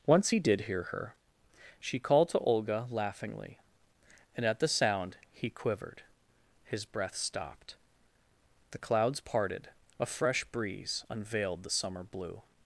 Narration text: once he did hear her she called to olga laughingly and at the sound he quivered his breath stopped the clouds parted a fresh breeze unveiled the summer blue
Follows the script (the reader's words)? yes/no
yes